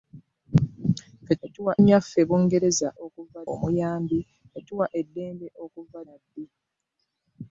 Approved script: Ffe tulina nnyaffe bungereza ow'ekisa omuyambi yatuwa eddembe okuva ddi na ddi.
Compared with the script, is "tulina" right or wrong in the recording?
wrong